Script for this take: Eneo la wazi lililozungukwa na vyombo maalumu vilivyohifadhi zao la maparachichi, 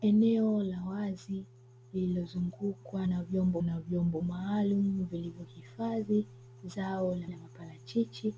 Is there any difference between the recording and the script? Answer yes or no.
yes